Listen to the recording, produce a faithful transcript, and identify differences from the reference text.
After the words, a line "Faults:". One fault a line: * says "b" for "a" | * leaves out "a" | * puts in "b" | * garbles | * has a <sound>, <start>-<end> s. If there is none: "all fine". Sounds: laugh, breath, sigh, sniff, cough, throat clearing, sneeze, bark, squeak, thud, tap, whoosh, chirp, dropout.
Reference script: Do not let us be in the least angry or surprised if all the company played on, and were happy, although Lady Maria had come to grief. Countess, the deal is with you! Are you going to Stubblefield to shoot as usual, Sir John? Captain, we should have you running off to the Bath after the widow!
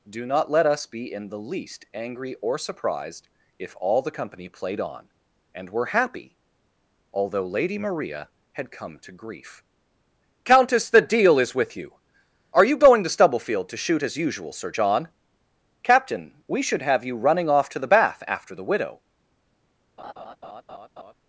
Do not let us be in the least angry or surprised if all the company played on, and were happy, although Lady Maria had come to grief. Countess, the deal is with you! Are you going to Stubblefield to shoot as usual, Sir John? Captain, we should have you running off to the Bath after the widow!
Faults:
* has a laugh, 20.0-21.1 s